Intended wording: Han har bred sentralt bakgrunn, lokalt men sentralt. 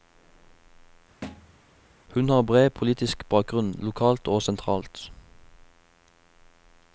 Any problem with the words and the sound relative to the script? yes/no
yes